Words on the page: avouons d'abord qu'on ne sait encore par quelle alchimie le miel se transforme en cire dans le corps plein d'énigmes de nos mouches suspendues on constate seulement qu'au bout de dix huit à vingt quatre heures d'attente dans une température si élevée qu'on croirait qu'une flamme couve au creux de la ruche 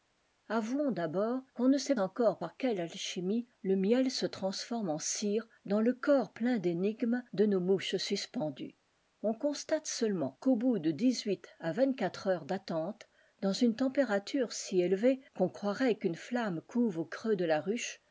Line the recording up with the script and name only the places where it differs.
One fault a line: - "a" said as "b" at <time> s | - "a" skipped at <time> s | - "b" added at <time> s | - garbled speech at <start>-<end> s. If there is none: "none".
none